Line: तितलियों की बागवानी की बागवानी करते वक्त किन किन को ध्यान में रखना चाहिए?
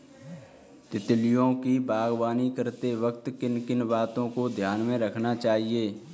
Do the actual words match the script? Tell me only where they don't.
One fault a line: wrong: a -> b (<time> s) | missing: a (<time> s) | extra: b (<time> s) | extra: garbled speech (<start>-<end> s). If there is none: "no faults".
missing: की बागवानी (2.5 s)
extra: बातों (3.9 s)